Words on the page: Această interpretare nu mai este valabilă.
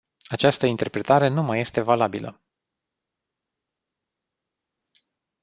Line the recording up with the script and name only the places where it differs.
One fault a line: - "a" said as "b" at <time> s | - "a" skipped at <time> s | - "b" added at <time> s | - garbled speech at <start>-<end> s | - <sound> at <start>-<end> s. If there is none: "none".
none